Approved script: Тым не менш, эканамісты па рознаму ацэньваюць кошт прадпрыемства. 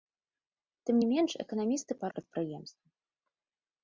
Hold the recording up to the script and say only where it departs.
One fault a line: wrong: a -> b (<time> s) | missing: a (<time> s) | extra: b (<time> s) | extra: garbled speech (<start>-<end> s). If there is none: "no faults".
missing: рознаму ацэньваюць кошт (2.1 s)